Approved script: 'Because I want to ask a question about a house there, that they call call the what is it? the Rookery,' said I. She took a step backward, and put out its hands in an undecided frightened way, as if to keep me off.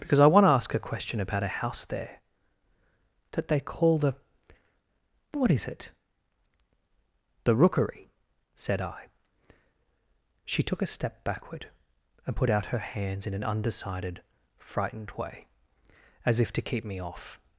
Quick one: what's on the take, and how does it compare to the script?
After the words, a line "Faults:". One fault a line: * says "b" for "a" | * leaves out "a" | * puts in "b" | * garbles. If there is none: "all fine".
'Because I want to ask a question about a house there, that they call the what is it? the Rookery,' said I. She took a step backward, and put out her hands in an undecided frightened way, as if to keep me off.
Faults:
* leaves out "call"
* says "her" for "its"